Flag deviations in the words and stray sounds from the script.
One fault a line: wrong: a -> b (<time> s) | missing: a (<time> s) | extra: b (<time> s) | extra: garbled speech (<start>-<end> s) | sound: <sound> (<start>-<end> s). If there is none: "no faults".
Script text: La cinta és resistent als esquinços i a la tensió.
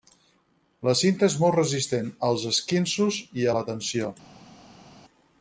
extra: molt (1.4 s)